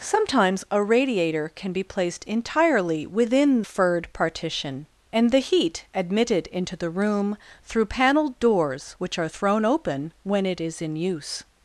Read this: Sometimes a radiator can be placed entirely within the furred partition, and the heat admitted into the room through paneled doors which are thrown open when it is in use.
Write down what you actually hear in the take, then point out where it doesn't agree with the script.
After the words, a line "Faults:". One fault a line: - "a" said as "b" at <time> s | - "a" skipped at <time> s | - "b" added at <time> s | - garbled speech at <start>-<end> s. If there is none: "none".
Sometimes a radiator can be placed entirely within furred partition, and the heat admitted into the room through paneled doors which are thrown open when it is in use.
Faults:
- "the" skipped at 3.6 s